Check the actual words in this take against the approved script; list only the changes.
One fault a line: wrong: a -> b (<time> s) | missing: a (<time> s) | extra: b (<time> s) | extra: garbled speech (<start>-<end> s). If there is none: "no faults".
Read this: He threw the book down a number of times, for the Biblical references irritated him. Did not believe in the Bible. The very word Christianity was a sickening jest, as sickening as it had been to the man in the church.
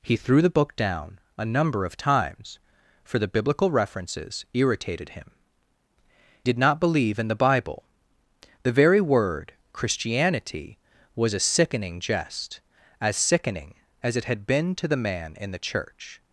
no faults